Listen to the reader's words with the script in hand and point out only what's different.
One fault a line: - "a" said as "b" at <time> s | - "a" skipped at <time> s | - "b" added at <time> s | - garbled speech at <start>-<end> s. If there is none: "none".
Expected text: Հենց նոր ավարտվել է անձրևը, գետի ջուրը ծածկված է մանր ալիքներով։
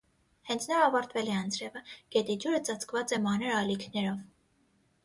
none